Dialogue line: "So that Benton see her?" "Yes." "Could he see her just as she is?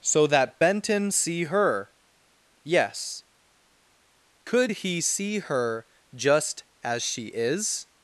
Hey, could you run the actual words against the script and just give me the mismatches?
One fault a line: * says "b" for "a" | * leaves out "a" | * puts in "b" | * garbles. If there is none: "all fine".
all fine